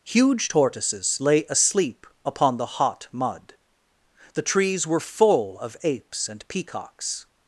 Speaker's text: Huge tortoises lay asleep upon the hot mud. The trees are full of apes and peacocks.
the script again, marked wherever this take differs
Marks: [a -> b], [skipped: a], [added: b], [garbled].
Huge tortoises lay asleep upon the hot mud. The trees [are -> were] full of apes and peacocks.